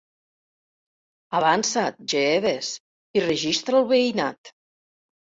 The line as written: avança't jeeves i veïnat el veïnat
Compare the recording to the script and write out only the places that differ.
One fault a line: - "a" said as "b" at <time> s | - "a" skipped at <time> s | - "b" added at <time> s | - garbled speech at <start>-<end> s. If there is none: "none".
- "veïnat" said as "registra" at 3.3 s